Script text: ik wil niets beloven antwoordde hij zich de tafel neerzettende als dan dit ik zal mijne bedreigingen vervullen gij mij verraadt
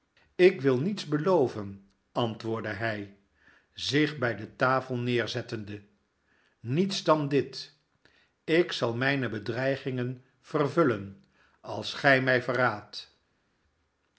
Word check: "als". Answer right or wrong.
wrong